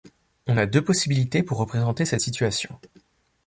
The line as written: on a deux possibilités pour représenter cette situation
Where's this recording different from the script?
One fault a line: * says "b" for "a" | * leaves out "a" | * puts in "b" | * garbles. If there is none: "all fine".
all fine